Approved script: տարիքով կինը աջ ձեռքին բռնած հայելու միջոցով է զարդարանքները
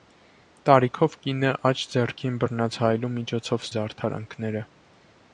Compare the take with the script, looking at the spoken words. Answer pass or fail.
pass